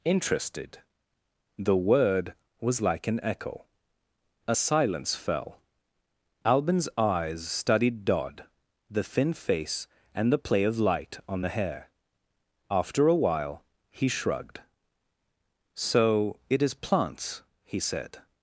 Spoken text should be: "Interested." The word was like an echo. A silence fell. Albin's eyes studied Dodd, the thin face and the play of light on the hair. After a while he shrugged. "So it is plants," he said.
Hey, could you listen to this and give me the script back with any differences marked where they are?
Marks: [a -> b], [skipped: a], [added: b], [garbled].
"Interested." The word was like an echo. A silence fell. Albin's eyes studied Dodd, the thin face and the play of light on the hair. After a while he shrugged. "So it is plants," he said.